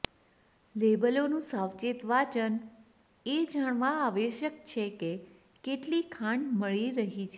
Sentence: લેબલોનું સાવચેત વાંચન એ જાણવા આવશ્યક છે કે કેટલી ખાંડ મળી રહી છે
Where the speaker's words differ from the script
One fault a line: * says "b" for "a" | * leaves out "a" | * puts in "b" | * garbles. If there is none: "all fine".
all fine